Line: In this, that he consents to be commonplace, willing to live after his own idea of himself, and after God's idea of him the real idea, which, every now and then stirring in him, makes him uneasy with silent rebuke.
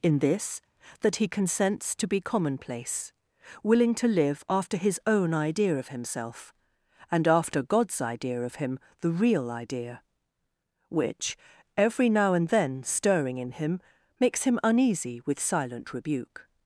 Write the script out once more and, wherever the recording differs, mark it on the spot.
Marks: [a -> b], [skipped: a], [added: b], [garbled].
In this, that he consents to be commonplace, willing to live after his own idea of himself, and after God's idea of him the real idea, which, every now and then stirring in him, makes him uneasy with silent rebuke.